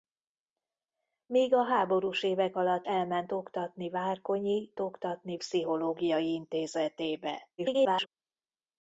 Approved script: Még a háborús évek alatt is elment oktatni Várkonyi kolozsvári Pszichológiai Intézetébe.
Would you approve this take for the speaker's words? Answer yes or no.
no